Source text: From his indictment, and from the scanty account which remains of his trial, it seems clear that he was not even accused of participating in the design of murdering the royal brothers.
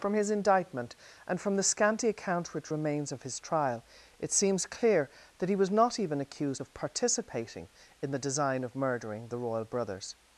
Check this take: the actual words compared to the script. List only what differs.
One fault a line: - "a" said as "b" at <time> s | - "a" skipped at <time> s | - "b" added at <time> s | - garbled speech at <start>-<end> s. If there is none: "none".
none